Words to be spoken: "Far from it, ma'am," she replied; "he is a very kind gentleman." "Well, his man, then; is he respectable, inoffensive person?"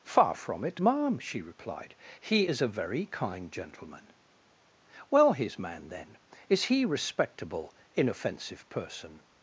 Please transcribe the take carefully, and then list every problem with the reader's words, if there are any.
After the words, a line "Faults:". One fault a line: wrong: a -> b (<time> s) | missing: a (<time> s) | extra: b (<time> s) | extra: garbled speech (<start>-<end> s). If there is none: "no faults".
"Far from it, ma'am," she replied; "he is a very kind gentleman." "Well, his man, then; is he respectable, inoffensive person?"
Faults:
no faults